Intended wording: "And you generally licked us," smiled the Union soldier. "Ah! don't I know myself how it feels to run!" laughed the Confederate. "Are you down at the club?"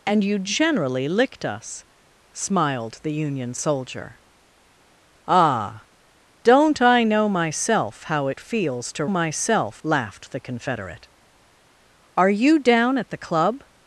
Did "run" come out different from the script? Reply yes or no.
yes